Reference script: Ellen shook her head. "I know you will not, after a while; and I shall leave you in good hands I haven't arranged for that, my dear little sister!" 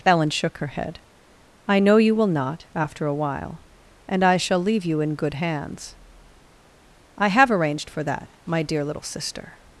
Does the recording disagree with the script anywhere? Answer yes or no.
yes